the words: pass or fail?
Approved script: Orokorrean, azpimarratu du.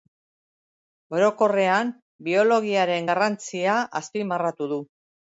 fail